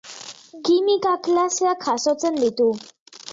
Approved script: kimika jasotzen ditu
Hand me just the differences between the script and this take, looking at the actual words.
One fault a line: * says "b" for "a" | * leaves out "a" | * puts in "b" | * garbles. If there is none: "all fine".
* puts in "klaseak"